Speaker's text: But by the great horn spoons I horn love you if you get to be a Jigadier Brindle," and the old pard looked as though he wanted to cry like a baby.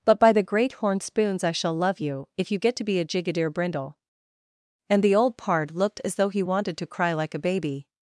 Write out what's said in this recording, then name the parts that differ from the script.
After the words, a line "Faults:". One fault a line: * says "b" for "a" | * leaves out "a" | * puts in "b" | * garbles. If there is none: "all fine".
But by the great horn spoons I shall love you if you get to be a Jigadier Brindle," and the old pard looked as though he wanted to cry like a baby.
Faults:
* says "shall" for "horn"